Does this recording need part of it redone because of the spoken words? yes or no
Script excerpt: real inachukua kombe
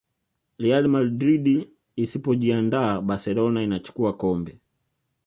yes